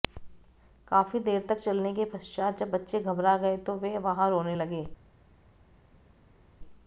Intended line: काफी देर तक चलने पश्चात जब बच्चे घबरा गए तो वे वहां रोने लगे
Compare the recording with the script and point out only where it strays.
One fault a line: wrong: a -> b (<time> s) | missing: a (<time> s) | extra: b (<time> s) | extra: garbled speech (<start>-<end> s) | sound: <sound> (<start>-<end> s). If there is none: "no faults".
extra: के (1.9 s)